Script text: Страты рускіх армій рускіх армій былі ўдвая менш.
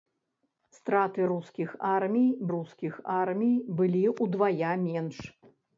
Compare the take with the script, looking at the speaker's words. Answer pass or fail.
pass